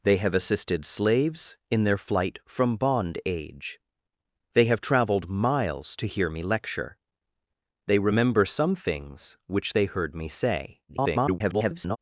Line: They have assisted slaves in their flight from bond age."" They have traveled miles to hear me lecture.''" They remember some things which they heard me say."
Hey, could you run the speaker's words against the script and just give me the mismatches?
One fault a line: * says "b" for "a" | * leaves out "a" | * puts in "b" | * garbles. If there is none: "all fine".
* garbles